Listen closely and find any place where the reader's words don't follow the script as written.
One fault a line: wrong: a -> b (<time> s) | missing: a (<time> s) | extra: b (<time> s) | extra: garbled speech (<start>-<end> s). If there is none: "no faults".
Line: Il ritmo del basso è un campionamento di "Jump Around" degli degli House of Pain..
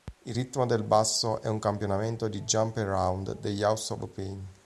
missing: degli (3.6 s)